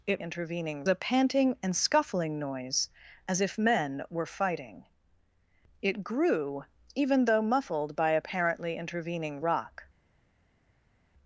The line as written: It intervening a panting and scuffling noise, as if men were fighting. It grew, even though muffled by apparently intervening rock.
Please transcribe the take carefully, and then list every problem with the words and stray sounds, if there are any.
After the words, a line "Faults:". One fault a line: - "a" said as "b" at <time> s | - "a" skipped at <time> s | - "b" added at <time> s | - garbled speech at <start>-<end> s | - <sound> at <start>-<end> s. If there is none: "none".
It intervening a panting and scuffling noise, as if men were fighting. It grew, even though muffled by apparently intervening rock.
Faults:
none